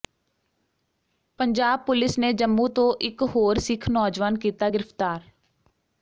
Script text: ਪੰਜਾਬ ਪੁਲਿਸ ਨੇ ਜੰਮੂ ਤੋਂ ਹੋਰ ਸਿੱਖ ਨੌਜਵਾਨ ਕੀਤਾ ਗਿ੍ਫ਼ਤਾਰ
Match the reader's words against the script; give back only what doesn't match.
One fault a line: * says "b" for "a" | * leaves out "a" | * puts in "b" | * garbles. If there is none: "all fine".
* puts in "ਇਕ"